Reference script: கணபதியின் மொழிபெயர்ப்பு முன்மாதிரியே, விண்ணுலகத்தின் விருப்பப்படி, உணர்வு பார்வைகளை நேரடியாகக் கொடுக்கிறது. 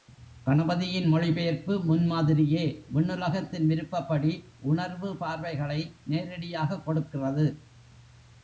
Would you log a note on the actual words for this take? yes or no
no